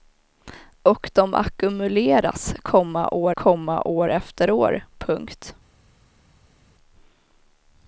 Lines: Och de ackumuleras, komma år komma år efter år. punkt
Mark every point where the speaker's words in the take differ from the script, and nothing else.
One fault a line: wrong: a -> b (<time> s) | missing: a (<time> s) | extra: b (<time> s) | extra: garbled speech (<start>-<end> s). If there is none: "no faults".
no faults